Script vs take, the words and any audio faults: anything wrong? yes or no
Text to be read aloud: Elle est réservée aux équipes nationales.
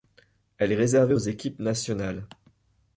no